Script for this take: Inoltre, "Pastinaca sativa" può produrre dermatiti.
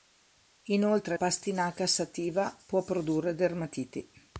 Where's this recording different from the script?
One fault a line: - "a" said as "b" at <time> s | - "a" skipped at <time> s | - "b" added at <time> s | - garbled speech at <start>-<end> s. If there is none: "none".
none